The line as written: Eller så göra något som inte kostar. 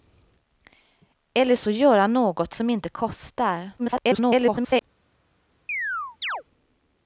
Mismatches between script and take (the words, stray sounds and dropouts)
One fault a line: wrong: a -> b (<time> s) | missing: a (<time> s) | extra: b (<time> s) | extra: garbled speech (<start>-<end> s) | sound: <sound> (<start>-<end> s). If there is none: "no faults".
extra: garbled speech (3.8-4.8 s)
sound: chirp (5.7-6.4 s)